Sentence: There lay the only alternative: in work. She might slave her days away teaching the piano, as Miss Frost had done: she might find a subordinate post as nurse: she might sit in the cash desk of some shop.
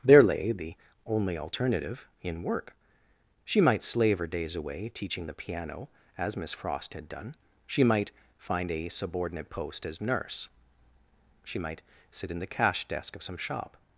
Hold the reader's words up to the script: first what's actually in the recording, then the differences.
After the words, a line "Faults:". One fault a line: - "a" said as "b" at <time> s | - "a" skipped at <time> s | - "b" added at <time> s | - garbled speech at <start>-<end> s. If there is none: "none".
There lay the only alternative: in work. She might slave her days away teaching the piano, as Miss Frost had done: she might find a subordinate post as nurse: she might sit in the cash desk of some shop.
Faults:
none